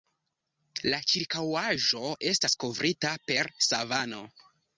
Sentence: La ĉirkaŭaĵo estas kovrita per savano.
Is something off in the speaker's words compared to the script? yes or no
no